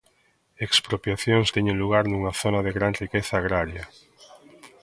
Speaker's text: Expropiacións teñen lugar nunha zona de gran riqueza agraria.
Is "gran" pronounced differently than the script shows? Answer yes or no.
no